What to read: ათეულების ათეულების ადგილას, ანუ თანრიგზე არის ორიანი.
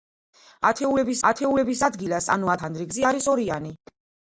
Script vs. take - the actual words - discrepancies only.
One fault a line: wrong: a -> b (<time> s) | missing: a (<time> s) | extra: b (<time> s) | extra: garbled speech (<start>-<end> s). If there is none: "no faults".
no faults